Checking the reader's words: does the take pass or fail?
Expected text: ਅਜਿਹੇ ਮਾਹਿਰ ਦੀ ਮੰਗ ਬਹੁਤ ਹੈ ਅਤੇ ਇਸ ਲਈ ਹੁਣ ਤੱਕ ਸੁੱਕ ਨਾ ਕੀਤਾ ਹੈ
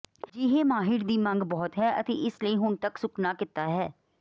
pass